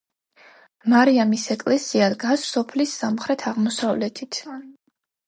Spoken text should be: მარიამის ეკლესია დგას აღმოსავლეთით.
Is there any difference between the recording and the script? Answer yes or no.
yes